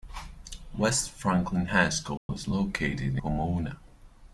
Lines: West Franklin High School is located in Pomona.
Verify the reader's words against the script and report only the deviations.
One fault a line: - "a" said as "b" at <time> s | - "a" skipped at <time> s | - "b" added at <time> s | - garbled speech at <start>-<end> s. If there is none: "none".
- "in" skipped at 3.2 s